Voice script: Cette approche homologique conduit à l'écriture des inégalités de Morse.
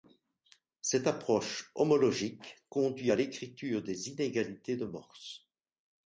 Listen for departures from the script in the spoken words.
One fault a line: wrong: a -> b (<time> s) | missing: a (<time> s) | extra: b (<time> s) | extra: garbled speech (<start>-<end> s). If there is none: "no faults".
no faults